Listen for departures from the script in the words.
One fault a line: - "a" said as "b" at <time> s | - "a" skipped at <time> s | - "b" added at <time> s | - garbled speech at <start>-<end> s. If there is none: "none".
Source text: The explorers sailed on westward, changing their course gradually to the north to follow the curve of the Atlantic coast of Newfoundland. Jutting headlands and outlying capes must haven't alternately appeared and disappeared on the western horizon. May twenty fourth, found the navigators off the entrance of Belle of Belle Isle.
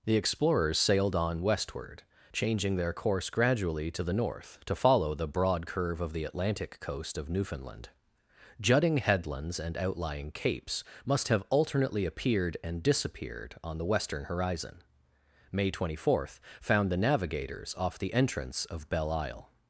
- "broad" added at 5.3 s
- "haven't" said as "have" at 11.3 s
- "of Belle" skipped at 19.1 s